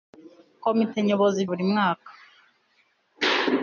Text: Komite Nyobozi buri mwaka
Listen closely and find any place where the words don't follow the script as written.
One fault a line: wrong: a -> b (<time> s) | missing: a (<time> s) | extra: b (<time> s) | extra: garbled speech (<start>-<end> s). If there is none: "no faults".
no faults